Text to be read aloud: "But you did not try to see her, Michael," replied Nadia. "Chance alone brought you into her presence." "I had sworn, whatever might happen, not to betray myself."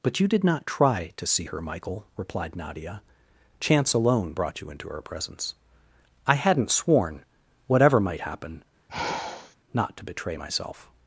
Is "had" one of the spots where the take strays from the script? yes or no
yes